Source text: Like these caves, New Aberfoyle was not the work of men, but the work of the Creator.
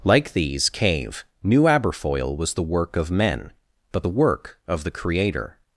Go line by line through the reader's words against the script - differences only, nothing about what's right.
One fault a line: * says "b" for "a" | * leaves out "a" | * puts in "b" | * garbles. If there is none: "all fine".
* says "cave" for "caves"
* leaves out "not"